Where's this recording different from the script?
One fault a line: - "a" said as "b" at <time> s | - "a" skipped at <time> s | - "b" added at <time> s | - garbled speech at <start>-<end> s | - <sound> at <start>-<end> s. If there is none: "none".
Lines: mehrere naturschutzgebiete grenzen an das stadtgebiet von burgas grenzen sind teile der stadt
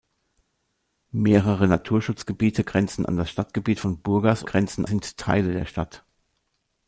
none